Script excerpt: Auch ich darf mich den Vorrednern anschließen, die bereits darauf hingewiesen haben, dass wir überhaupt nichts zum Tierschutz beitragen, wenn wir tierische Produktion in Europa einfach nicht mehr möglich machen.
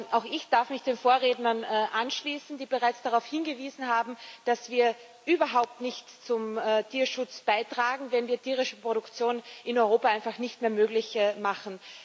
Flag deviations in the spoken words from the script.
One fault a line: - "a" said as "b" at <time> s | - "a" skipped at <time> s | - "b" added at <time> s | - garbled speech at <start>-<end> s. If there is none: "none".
none